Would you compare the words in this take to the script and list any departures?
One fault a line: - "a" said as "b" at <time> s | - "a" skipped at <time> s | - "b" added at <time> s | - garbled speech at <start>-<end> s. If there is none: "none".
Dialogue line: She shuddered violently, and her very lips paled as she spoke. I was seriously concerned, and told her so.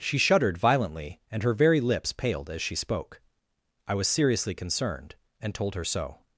none